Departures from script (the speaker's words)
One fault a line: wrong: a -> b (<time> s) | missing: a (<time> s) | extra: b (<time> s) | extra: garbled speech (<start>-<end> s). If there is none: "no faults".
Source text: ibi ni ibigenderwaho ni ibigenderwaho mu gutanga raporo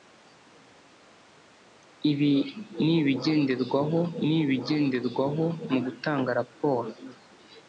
no faults